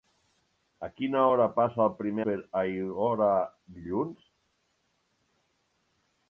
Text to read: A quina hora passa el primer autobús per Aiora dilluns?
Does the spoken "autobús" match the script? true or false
false